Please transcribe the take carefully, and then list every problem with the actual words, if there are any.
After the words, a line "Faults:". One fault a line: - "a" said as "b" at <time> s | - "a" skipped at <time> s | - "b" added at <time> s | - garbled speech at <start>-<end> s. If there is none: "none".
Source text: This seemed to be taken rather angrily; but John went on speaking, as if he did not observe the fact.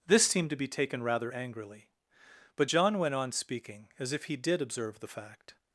This seemed to be taken rather angrily; but John went on speaking, as if he did observe the fact.
Faults:
- "not" skipped at 4.6 s